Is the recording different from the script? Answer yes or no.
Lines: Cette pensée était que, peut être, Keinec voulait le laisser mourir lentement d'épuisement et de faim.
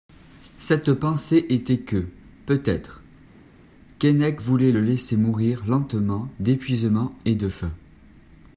no